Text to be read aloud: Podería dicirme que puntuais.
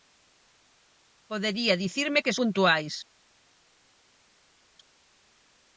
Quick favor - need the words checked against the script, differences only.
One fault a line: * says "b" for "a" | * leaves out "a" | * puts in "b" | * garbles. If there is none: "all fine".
all fine